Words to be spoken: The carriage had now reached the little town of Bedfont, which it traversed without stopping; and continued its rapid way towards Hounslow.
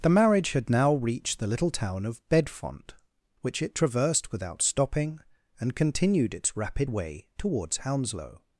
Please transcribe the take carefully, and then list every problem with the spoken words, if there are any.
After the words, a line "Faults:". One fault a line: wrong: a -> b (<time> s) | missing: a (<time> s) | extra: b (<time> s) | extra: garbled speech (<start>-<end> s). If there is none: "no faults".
The marriage had now reached the little town of Bedfont, which it traversed without stopping; and continued its rapid way towards Hounslow.
Faults:
wrong: carriage -> marriage (0.1 s)